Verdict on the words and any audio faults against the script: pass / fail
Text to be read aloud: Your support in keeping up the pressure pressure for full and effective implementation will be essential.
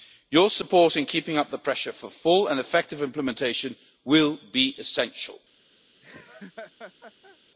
fail